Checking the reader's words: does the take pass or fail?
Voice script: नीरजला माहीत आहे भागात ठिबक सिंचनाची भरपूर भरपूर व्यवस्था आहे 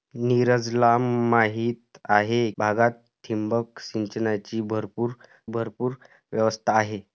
pass